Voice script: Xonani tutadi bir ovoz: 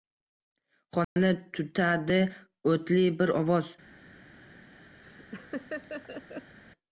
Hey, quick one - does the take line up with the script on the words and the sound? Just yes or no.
no